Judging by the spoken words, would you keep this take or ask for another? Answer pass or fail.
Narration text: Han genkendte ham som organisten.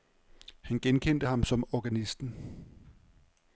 pass